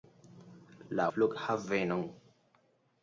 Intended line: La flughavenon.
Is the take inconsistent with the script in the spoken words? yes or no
no